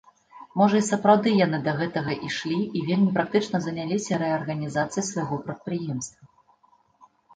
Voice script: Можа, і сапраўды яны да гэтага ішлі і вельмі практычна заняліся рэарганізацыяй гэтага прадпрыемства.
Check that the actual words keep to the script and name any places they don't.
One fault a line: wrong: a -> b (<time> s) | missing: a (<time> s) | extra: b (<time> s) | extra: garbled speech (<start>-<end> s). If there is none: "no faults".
wrong: гэтага -> свайго (5.1 s)